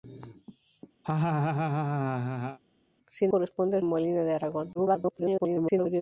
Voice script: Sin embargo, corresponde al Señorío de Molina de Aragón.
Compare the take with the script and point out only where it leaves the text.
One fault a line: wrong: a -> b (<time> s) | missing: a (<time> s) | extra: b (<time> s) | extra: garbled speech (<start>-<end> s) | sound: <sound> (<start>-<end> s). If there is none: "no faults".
sound: laugh (1.0-2.6 s)
missing: embargo (3.3 s)
missing: Señorío de (3.8 s)
extra: garbled speech (4.8-6.0 s)